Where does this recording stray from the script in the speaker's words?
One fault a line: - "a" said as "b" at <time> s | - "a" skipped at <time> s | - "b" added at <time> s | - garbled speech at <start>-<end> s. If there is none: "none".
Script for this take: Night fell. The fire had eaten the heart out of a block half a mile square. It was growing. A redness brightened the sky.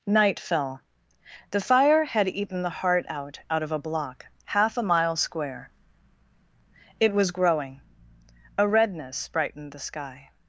- "out" added at 3.5 s